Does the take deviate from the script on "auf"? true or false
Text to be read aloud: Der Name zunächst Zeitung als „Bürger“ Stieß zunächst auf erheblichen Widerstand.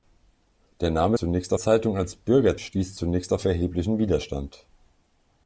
false